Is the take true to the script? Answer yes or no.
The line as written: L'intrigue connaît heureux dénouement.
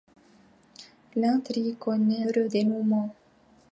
yes